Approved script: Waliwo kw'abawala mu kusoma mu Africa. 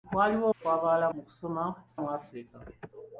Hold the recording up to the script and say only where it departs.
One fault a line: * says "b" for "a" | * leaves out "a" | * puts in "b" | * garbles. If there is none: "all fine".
all fine